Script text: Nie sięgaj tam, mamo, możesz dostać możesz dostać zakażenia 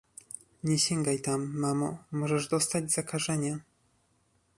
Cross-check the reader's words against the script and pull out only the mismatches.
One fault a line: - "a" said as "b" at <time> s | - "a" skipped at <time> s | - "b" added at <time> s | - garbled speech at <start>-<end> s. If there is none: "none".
- "możesz dostać" skipped at 2.9 s